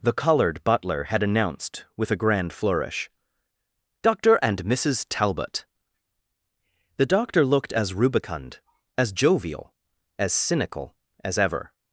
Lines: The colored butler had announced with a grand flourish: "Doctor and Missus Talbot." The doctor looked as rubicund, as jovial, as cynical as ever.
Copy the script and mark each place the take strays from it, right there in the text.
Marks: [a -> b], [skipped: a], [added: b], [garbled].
The colored butler had announced with a grand flourish: "Doctor and Missus Talbot." The doctor looked as rubicund, as jovial, as cynical as ever.